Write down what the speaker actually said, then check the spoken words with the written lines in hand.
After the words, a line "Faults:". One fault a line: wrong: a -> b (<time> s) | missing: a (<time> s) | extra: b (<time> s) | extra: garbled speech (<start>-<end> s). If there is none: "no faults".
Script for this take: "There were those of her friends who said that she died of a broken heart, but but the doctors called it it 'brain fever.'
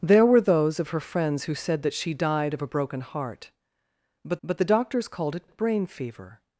"There were those of her friends who said that she died of a broken heart, but but the doctors called it it 'brain fever.'
Faults:
no faults